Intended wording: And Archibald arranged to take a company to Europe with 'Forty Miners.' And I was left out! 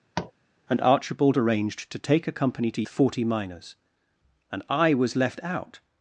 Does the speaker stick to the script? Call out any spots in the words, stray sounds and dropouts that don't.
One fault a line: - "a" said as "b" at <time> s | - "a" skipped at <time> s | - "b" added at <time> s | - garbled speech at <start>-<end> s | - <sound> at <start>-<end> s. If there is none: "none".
- tap at 0.2-0.3 s
- "Europe with" skipped at 2.8 s